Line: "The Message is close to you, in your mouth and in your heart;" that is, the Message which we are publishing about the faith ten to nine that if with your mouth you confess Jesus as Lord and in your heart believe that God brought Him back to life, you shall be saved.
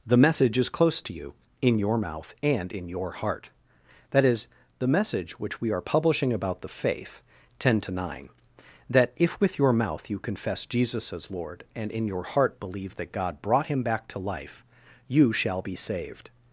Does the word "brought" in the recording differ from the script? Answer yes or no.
no